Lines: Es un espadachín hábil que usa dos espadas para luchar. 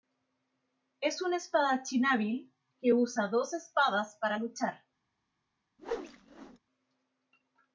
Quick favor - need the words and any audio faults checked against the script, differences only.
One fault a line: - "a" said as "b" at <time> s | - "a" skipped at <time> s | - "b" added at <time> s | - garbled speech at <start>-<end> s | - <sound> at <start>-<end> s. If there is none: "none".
- whoosh at 5.8-6.6 s